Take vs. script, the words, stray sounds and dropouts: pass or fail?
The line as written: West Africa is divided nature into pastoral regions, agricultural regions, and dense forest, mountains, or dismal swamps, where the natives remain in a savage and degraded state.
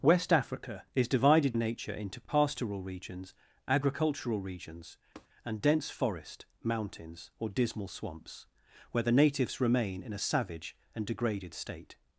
fail